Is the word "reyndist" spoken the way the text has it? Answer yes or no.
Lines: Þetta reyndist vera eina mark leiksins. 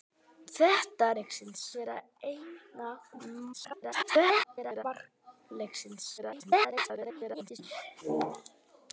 no